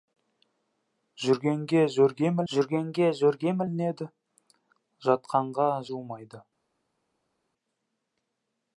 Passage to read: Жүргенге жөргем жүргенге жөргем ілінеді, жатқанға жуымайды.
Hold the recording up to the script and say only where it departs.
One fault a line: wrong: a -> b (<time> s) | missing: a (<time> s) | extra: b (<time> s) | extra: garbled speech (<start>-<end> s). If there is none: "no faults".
no faults